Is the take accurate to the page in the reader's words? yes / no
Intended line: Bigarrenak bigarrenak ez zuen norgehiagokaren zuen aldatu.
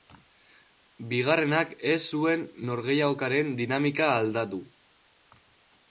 no